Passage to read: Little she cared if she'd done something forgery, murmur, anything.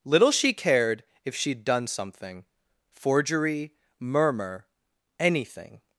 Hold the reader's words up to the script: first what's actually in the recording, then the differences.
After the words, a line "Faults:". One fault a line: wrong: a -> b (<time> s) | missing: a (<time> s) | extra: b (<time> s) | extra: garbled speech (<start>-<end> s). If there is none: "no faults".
Little she cared if she'd done something forgery, murmur, anything.
Faults:
no faults